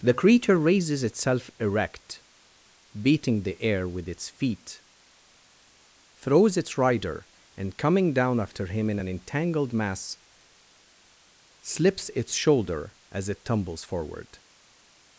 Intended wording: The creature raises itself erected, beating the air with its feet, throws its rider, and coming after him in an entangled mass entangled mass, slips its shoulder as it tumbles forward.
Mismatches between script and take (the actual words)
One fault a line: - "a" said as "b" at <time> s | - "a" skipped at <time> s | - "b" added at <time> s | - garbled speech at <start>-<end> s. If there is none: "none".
- "erected" said as "erect" at 1.6 s
- "down" added at 8.1 s
- "entangled mass" skipped at 10.2 s